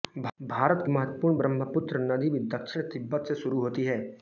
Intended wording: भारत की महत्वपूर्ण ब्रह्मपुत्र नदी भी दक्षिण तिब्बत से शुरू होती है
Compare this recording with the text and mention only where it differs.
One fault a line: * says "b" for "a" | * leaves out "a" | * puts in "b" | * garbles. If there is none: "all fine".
all fine